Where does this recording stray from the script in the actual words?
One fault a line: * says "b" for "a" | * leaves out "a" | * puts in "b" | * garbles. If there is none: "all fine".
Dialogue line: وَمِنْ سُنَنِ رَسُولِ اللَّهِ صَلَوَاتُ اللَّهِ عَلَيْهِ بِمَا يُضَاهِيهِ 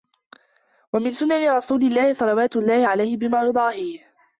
all fine